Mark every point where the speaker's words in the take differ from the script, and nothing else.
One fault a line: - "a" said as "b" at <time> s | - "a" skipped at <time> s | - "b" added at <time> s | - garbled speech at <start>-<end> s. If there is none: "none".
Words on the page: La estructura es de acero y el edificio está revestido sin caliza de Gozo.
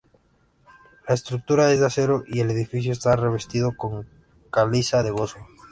- "sin" said as "con" at 3.8 s